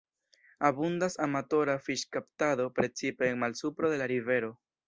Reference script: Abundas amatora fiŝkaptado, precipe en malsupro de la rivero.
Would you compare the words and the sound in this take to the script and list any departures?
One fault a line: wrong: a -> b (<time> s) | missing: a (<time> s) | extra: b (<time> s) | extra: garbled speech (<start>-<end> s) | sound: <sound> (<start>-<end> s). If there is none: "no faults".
no faults